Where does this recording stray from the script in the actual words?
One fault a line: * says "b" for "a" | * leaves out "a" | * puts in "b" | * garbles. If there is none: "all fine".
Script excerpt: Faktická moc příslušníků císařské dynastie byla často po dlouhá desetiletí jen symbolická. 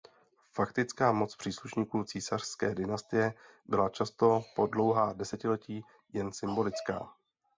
all fine